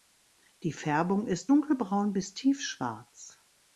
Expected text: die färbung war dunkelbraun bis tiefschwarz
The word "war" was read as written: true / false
false